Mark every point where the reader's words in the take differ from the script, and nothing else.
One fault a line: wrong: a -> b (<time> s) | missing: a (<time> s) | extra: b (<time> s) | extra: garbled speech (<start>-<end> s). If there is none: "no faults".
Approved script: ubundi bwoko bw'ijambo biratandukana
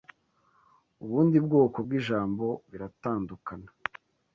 no faults